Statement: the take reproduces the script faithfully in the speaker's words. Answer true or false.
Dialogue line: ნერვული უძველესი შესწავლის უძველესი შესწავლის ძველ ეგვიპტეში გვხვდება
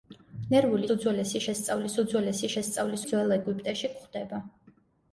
true